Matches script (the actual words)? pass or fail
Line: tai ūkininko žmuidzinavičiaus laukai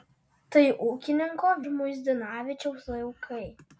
pass